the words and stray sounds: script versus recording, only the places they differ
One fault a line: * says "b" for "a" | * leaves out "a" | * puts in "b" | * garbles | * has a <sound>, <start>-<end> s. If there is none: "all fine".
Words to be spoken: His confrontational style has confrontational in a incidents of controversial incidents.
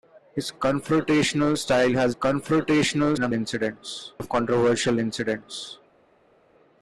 all fine